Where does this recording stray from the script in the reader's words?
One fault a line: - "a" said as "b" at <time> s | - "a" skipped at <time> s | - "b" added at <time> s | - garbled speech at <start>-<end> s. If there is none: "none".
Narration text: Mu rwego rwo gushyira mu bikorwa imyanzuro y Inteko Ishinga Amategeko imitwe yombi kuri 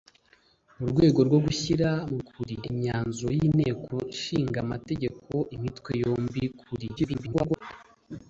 - "bikorwa" said as "kuri" at 2.3 s
- garbled speech at 7.0-7.6 s